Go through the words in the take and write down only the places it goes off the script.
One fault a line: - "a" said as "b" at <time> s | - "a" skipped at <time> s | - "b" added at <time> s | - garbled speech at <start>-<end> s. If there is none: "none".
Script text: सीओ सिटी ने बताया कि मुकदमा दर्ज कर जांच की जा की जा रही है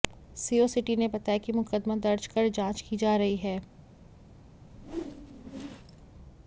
- "की जा" skipped at 3.1 s